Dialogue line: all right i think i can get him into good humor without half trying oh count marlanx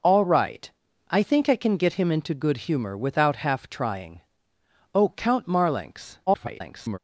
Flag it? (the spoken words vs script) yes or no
yes